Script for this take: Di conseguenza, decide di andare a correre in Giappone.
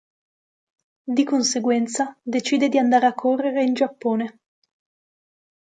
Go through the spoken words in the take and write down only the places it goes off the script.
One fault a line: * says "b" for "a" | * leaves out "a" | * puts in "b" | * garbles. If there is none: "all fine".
all fine